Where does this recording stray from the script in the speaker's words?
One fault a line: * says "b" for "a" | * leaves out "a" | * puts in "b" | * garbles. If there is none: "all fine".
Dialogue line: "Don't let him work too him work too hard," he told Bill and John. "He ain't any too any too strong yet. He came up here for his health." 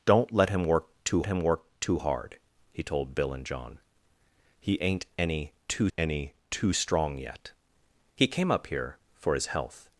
all fine